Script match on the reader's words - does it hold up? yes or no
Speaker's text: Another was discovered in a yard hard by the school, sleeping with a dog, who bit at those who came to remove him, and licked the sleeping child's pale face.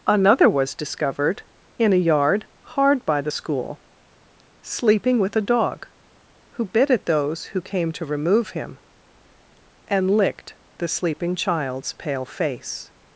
yes